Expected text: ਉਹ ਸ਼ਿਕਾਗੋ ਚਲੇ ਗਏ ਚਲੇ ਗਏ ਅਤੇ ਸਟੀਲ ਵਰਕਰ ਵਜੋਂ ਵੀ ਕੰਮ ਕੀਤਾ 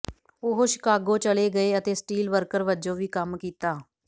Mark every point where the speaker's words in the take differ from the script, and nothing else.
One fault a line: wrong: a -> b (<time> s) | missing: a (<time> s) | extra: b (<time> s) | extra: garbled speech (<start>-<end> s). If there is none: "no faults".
missing: ਚਲੇ ਗਏ (1.8 s)